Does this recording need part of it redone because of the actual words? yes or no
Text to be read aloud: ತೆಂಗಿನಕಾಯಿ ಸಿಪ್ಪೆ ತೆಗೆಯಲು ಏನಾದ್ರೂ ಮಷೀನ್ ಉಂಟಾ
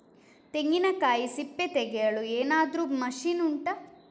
no